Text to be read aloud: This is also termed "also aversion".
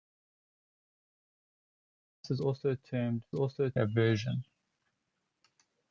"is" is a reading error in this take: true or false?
false